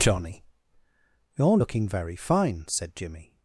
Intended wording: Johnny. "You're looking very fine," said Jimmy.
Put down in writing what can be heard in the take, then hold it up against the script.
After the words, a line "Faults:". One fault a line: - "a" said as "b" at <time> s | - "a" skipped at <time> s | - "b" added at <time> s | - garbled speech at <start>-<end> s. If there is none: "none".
Johnny. "You're looking very fine," said Jimmy.
Faults:
none